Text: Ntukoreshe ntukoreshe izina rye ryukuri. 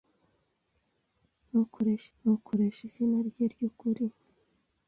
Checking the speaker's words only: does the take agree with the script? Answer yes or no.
yes